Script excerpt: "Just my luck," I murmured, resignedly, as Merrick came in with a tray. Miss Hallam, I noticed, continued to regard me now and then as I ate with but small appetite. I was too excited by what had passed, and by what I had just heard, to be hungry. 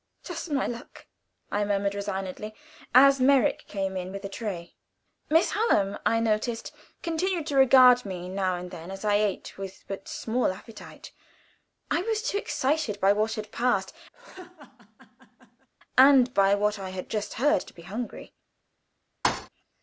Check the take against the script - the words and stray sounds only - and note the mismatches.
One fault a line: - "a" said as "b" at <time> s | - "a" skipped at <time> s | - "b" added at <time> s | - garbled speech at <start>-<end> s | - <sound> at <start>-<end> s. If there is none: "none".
- laugh at 14.1-15.7 s
- thud at 19.2-19.5 s